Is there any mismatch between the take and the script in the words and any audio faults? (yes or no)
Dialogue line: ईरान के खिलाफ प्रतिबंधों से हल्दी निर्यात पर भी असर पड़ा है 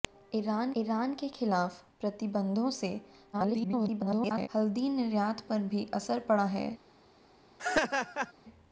yes